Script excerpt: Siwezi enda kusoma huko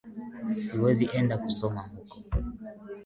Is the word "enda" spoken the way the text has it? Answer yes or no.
yes